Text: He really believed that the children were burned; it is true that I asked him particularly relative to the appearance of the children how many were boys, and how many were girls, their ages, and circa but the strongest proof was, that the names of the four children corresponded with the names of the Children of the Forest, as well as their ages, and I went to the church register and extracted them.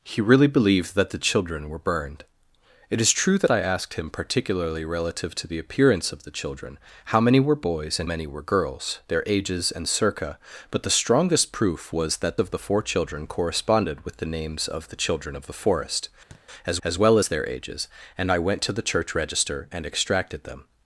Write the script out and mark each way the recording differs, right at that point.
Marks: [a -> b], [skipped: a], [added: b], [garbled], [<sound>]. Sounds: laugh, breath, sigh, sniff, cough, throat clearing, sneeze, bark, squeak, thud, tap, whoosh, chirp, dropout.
He really believed that the children were burned; it is true that I asked him particularly relative to the appearance of the children how many were boys, and [skipped: how] many were girls, their ages, and circa but the strongest proof was, that [skipped: the names] of the four children corresponded with the names of the Children of the Forest, [thud] as [added: as] well as their ages, and I went to the church register and extracted them.